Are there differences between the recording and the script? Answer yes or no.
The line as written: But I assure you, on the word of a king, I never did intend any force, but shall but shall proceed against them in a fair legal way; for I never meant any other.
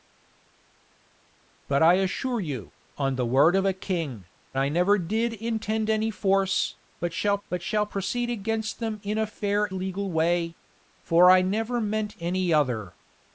no